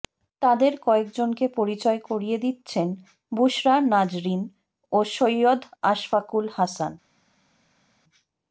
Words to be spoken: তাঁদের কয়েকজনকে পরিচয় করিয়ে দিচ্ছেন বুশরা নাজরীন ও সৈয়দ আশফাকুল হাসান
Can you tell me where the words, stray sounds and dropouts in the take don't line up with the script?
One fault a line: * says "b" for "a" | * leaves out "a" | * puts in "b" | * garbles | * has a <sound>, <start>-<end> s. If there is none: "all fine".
all fine